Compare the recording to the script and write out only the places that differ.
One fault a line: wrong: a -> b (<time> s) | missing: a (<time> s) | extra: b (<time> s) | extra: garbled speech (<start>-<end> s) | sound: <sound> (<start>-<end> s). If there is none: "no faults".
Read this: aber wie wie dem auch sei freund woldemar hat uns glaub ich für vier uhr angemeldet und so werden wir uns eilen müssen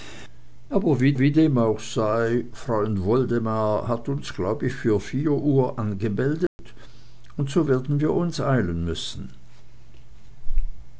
sound: dropout (6.5-6.6 s)